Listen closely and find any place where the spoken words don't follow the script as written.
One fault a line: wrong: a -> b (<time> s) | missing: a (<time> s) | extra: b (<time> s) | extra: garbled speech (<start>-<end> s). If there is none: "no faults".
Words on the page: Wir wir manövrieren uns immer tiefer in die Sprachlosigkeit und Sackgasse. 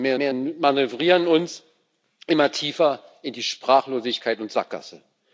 no faults